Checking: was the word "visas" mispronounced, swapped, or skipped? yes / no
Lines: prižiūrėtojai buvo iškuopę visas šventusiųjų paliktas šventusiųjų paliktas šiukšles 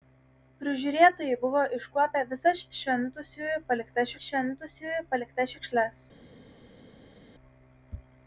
no